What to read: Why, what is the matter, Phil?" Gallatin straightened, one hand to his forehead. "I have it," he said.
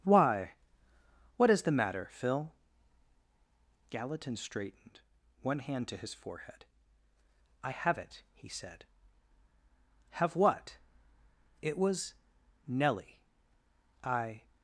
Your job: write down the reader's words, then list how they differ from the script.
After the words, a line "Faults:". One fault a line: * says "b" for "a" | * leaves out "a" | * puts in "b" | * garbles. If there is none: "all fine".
Why, what is the matter, Phil?" Gallatin straightened, one hand to his forehead. "I have it," he said. "Have what?" "It was Nellie. I
Faults:
* puts in "Have what It was Nellie I"